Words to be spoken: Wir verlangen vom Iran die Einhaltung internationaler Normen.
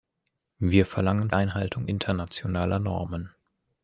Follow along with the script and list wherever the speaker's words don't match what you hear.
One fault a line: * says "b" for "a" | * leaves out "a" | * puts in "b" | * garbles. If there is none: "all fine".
* leaves out "vom Iran die"